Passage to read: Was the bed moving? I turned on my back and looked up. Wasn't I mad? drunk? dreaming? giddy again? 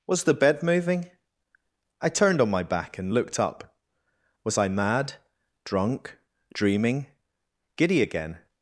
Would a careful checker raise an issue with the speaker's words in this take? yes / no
yes